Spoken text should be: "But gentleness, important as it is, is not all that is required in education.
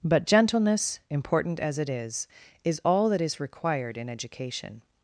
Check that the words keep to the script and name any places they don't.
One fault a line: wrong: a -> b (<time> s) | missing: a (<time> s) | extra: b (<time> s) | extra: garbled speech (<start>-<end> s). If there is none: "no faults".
missing: not (2.8 s)